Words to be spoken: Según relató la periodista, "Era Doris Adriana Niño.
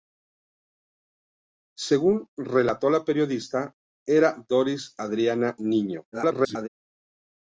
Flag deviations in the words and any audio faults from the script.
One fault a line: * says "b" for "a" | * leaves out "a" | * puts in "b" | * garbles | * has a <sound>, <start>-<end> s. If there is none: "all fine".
* garbles